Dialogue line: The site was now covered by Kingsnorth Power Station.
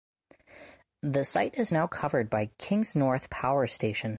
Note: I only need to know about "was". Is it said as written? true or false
false